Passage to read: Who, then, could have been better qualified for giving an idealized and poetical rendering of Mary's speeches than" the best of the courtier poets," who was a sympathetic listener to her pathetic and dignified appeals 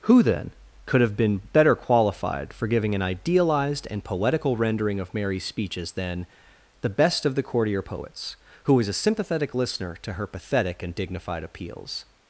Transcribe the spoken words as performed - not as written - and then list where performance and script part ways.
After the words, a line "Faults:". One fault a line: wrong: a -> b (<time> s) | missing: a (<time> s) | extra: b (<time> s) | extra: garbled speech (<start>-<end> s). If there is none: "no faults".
Who, then, could have been better qualified for giving an idealized and poetical rendering of Mary's speeches than" the best of the courtier poets," who was a sympathetic listener to her pathetic and dignified appeals
Faults:
no faults